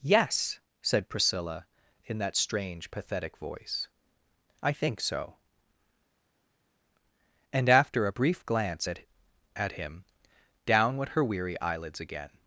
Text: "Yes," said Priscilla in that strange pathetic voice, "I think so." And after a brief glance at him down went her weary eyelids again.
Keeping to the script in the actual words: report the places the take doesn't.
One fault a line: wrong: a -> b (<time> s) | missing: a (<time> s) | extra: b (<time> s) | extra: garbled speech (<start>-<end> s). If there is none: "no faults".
extra: at (9.6 s)